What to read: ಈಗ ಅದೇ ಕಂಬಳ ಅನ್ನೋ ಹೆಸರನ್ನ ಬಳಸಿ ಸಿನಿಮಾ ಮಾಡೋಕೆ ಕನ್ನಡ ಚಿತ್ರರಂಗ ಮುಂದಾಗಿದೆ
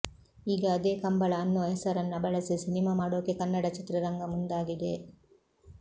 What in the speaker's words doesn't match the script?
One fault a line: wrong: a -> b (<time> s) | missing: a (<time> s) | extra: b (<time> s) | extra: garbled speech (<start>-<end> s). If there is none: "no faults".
no faults